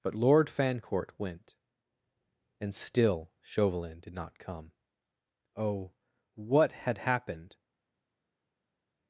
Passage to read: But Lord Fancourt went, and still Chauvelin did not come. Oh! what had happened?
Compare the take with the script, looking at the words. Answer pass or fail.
pass